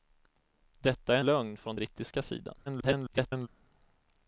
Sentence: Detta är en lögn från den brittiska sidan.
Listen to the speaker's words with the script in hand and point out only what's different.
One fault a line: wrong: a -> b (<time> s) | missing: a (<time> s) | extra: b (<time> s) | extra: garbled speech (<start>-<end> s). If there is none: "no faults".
missing: en (1.2 s)
missing: den (1.8 s)
extra: garbled speech (2.7-3.5 s)